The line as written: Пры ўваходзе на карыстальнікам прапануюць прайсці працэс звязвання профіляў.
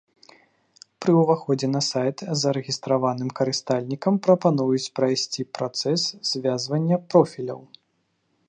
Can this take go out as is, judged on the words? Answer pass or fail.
fail